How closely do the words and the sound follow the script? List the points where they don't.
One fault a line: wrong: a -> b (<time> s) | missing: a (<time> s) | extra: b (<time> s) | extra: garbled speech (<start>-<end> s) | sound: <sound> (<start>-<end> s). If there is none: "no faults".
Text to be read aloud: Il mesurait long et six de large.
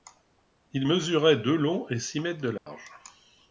extra: de (1.4 s)
extra: mètres (2.2 s)
sound: dropout (2.6-2.7 s)